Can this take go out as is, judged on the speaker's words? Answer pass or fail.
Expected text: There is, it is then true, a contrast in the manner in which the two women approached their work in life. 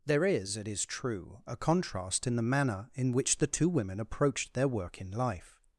fail